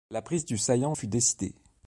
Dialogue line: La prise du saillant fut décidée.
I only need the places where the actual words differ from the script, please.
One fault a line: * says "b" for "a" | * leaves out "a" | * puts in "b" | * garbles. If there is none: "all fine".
all fine